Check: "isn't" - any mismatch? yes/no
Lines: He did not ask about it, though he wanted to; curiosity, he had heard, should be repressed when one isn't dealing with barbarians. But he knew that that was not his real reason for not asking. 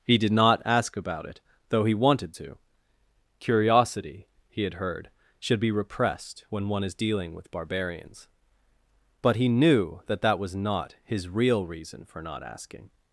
yes